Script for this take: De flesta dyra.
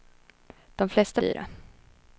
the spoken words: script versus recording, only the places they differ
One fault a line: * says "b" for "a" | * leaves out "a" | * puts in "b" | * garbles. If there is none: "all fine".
all fine